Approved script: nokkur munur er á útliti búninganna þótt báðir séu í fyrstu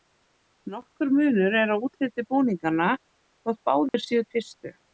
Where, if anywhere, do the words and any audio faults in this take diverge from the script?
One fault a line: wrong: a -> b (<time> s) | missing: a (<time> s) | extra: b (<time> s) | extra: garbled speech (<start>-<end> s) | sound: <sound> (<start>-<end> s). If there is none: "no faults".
sound: dropout (3.9-3.9 s)